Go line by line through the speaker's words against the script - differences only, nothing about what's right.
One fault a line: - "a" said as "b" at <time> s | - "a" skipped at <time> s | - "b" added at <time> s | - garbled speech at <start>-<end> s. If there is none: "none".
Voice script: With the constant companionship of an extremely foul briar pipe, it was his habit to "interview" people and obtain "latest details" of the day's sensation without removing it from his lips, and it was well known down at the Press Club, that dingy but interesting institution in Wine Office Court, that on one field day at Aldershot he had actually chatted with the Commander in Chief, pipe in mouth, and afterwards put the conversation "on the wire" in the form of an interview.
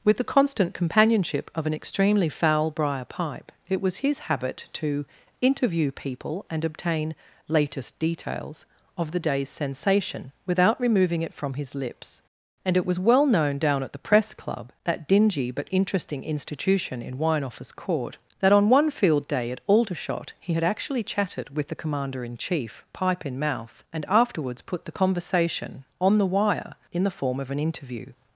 none